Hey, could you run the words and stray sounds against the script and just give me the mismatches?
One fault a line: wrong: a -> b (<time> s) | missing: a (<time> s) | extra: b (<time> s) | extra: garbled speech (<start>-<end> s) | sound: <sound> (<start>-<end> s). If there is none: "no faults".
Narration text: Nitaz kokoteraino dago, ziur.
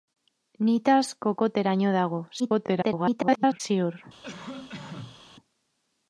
extra: garbled speech (2.4-3.6 s)
sound: cough (4.2-5.2 s)